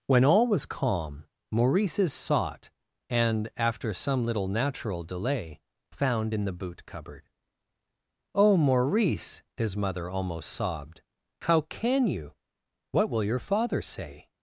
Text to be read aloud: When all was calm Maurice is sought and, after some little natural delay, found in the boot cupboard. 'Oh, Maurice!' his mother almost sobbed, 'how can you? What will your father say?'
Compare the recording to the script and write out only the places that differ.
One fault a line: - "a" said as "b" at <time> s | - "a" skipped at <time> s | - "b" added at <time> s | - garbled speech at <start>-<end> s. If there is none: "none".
none